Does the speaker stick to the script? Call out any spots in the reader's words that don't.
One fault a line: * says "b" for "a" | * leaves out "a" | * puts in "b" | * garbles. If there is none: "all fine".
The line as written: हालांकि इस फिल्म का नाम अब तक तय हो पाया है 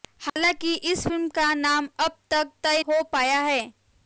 all fine